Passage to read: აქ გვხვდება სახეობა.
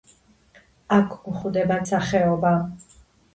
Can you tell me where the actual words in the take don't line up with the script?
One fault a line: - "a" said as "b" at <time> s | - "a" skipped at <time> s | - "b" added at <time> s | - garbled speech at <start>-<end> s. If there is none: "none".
none